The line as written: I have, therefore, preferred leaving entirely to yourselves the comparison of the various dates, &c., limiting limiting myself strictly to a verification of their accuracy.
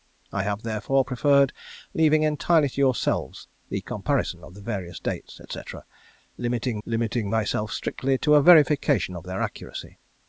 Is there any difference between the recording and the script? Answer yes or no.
no